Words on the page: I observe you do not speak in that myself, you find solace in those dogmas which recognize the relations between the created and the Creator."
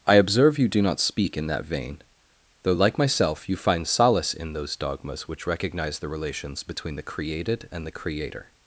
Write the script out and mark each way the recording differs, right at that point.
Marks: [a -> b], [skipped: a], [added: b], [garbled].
I observe you do not speak in that [added: vein though like] myself, you find solace in those dogmas which recognize the relations between the created and the Creator."